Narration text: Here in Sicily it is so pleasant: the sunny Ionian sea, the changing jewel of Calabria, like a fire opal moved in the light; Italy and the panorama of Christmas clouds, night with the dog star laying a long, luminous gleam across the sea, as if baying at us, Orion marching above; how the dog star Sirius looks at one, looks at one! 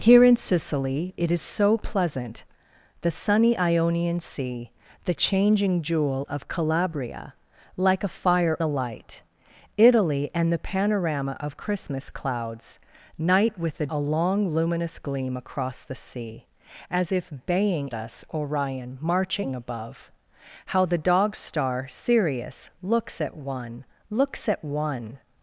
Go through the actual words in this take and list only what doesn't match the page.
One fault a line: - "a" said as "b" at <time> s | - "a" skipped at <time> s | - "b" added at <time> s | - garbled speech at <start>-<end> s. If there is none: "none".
- "opal moved in" skipped at 8.6 s
- "dog star laying" skipped at 13.9 s
- "at" skipped at 17.9 s